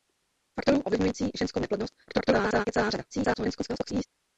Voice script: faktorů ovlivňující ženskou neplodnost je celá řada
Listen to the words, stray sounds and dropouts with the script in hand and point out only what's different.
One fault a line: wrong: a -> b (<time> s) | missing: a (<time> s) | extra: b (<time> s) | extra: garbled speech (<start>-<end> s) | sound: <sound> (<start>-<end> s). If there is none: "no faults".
extra: garbled speech (2.1-2.7 s)
extra: garbled speech (3.1-4.1 s)